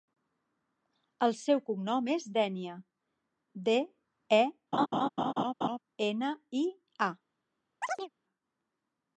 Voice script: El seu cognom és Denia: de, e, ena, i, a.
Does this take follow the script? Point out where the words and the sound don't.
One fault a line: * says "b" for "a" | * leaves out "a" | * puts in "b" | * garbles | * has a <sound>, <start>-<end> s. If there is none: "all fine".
* has a laugh, 4.7-5.8 s
* has a chirp, 7.8-8.1 s